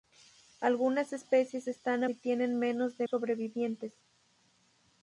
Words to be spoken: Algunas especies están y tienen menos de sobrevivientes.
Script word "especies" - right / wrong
right